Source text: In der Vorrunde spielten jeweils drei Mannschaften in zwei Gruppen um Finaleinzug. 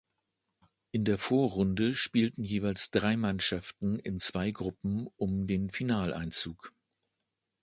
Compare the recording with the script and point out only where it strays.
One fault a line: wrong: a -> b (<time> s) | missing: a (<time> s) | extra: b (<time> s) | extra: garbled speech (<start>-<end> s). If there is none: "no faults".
extra: den (5.5 s)